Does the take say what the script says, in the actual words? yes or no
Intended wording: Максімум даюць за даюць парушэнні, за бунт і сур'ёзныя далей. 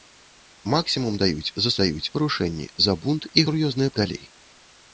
yes